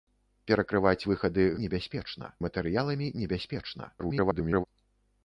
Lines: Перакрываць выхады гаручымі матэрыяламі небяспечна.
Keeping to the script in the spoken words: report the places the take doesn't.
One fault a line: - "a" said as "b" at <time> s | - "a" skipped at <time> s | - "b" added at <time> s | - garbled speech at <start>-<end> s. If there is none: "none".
- "гаручымі" said as "небяспечна" at 1.7 s
- garbled speech at 4.0-4.6 s